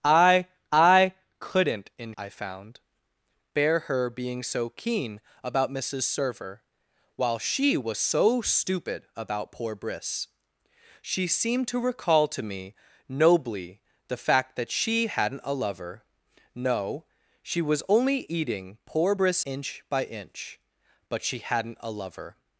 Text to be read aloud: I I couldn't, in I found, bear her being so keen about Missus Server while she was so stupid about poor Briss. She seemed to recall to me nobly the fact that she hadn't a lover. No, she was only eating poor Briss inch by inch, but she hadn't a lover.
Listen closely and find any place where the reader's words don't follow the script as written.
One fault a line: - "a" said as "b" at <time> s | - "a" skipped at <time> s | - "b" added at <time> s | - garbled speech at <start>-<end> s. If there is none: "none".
none